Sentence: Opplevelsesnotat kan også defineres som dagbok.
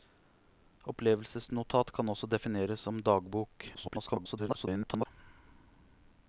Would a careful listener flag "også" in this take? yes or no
no